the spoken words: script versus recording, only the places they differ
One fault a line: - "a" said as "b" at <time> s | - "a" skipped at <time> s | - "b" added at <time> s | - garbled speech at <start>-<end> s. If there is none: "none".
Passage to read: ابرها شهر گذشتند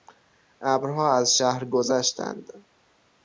- "از" added at 1.2 s